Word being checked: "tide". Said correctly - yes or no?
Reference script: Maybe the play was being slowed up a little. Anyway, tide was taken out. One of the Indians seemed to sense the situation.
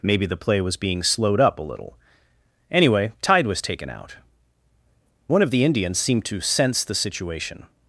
yes